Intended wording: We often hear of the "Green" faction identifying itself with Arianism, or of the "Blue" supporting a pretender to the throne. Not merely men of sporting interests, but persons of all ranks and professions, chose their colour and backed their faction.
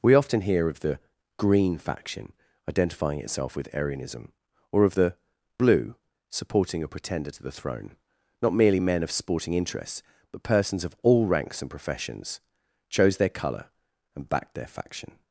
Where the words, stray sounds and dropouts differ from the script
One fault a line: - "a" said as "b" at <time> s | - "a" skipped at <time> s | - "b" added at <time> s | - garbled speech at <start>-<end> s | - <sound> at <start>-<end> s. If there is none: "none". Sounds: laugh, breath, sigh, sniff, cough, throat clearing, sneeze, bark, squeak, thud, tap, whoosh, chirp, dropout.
none